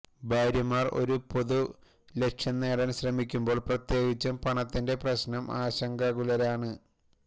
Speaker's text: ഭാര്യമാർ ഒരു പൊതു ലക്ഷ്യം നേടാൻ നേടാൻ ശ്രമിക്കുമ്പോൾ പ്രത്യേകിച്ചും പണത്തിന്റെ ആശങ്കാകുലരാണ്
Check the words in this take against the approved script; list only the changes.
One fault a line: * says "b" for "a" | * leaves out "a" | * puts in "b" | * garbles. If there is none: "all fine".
* leaves out "നേടാൻ"
* puts in "പ്രശ്നം"